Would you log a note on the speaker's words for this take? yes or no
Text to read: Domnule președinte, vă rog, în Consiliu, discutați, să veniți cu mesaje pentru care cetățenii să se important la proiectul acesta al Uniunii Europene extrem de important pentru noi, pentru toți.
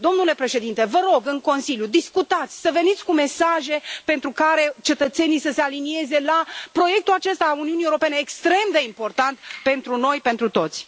yes